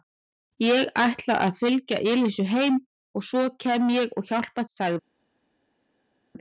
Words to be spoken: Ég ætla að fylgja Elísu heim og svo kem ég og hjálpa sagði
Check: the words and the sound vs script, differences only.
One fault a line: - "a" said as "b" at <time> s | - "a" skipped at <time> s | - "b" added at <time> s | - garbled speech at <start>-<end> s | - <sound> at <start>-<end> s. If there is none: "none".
none